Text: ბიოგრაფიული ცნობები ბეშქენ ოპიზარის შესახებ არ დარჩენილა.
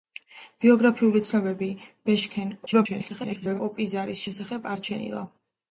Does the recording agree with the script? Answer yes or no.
no